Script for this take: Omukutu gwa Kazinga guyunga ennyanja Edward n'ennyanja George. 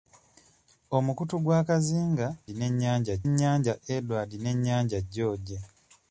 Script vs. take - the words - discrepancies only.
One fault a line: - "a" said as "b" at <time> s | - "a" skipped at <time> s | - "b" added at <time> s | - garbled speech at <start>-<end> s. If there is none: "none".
- "guyunga" said as "n'ennyanja" at 2.5 s